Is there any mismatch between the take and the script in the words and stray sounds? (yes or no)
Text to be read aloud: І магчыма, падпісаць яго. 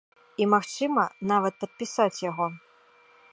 yes